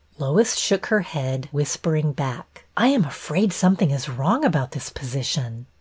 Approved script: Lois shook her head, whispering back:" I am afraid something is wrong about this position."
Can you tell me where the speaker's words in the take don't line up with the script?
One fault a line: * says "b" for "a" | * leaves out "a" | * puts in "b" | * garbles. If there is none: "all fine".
all fine